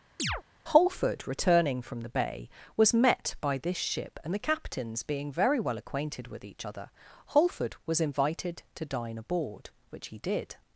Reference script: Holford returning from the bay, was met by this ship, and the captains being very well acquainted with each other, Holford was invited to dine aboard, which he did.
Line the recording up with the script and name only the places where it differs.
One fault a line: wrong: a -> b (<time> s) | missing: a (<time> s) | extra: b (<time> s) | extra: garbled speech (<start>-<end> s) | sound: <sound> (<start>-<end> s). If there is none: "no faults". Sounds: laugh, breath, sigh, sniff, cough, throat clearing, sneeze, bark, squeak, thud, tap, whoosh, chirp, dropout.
sound: chirp (0.2-0.4 s)